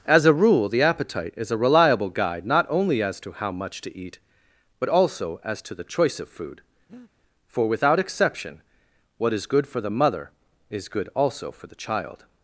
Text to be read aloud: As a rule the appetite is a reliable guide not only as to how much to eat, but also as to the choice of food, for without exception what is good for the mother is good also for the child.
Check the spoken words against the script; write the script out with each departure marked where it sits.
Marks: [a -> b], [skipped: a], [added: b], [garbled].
As a rule the appetite is a reliable guide not only as to how much to eat, but also as to the choice of food, for without exception what is good for the mother is good also for the child.